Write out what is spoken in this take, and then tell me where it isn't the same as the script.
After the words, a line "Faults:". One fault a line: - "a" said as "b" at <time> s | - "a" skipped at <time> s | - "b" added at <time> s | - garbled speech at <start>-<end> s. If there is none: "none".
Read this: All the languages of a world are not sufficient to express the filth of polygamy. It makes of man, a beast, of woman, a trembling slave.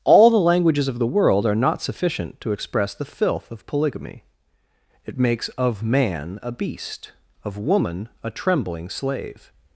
All the languages of the world are not sufficient to express the filth of polygamy. It makes of man, a beast, of woman, a trembling slave.
Faults:
- "a" said as "the" at 1.0 s